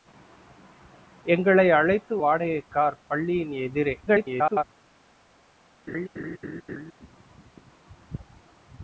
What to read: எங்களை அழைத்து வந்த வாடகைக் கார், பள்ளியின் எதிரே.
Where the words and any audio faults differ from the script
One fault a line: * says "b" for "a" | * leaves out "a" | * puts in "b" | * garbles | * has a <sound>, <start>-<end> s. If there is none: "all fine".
* leaves out "வந்த"
* garbles
* has a laugh, 5.9-6.9 s